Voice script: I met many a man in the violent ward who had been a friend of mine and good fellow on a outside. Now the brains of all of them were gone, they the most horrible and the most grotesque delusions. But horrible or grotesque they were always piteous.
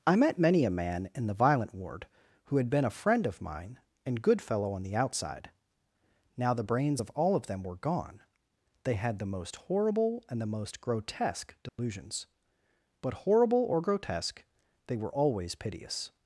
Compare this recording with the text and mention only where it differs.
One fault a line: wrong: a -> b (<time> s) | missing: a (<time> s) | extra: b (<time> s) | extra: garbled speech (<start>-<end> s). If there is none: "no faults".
wrong: a -> the (4.8 s)
extra: had (8.9 s)